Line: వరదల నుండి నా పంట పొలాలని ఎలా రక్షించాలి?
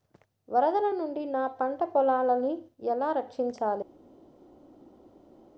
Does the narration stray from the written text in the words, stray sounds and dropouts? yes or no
no